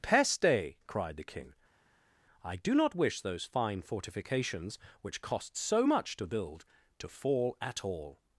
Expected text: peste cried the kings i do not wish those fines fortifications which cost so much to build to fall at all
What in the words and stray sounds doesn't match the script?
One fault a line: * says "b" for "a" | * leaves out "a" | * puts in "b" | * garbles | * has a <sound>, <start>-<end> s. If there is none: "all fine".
* says "king" for "kings"
* says "fine" for "fines"